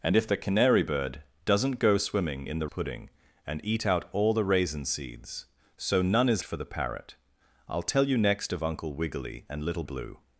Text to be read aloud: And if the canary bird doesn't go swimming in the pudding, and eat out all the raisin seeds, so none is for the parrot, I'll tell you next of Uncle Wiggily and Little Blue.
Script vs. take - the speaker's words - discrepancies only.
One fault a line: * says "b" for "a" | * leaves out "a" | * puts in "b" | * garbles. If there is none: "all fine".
all fine